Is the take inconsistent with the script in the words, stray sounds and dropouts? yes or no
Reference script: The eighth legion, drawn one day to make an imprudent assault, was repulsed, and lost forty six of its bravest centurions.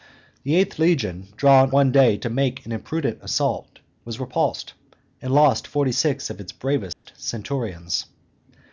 yes